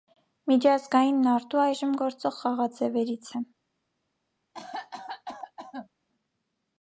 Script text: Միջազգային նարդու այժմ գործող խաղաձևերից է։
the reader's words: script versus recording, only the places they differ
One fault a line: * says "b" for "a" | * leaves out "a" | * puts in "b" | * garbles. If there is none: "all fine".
all fine